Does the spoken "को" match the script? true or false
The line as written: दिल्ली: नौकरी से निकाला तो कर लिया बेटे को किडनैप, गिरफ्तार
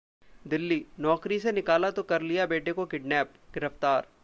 true